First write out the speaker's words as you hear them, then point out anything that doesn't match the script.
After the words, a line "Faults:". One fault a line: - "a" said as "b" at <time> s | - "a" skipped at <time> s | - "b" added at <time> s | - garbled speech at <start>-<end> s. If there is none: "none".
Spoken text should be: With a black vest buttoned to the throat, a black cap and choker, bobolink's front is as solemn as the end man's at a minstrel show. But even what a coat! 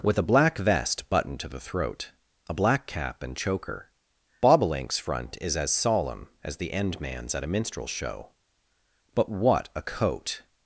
With a black vest buttoned to the throat, a black cap and choker, bobolink's front is as solemn as the end man's at a minstrel show. But what a coat!
Faults:
- "even" skipped at 9.3 s